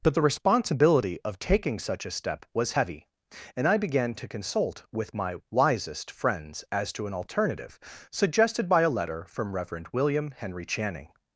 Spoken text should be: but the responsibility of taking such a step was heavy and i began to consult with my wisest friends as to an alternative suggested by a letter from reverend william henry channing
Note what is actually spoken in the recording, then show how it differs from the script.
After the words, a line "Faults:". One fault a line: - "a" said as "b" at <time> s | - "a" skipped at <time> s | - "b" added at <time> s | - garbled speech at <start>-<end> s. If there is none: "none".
but the responsibility of taking such a step was heavy and i began to consult with my wisest friends as to an alternative suggested by a letter from reverend william henry channing
Faults:
none